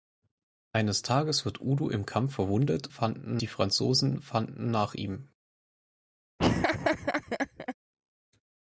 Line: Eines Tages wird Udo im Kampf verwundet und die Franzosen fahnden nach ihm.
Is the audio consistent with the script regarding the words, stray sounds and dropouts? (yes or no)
no